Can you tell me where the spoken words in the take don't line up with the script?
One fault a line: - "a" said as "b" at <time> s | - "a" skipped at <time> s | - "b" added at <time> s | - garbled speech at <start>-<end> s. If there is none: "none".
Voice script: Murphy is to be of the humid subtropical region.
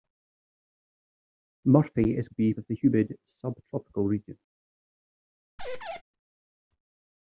none